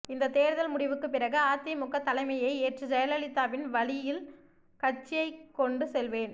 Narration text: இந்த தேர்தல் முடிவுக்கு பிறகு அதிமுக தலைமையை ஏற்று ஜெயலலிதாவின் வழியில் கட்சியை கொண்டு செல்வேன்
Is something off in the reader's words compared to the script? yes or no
no